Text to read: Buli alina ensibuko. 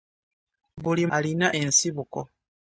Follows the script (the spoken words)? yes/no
yes